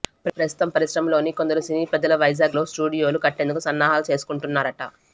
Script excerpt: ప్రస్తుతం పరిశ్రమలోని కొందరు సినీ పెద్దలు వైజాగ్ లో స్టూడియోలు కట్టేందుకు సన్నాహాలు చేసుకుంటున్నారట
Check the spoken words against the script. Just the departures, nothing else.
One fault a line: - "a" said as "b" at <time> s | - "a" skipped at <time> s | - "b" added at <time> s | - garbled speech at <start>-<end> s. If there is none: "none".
none